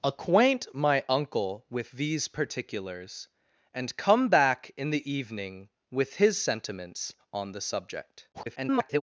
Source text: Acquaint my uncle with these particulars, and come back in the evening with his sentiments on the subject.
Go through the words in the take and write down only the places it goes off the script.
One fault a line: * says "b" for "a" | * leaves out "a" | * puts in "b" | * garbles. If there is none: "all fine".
* garbles